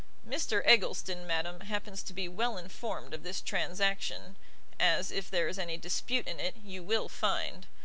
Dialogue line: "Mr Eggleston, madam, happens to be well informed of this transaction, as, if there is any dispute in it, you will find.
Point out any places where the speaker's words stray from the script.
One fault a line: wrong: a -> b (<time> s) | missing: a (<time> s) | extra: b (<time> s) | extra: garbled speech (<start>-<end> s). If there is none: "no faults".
no faults